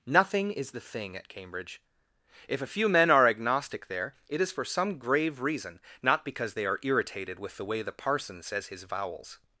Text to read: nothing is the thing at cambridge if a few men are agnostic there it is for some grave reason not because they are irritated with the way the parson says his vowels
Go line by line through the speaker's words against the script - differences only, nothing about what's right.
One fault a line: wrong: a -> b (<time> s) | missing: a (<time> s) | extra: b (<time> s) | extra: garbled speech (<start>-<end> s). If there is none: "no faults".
no faults